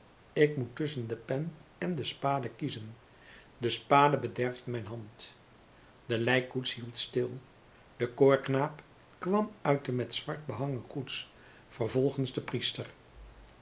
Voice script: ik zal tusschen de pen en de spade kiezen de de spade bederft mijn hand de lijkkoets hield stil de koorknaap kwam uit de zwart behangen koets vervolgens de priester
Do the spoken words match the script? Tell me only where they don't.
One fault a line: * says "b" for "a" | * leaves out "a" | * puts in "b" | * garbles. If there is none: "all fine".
* says "moet" for "zal"
* leaves out "de"
* puts in "met"